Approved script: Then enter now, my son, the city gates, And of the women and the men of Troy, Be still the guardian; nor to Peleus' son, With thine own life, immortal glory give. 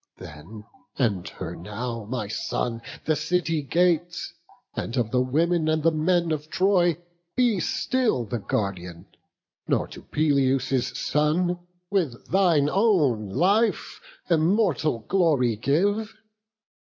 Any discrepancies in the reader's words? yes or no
no